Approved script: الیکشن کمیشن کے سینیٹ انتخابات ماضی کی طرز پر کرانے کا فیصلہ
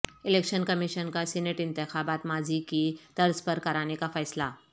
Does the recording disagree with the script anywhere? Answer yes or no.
yes